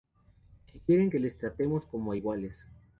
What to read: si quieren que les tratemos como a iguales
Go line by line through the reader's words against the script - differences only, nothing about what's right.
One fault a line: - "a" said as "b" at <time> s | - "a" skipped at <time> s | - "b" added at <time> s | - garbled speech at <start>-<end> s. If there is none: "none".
none